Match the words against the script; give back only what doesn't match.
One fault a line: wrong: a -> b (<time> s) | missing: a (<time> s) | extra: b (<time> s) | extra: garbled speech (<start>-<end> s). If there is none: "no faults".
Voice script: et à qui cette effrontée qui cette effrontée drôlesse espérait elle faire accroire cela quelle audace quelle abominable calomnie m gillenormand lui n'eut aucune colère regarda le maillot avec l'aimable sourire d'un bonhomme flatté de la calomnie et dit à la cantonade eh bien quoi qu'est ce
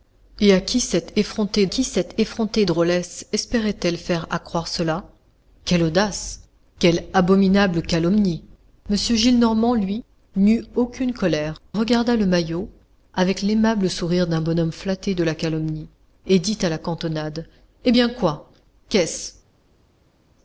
no faults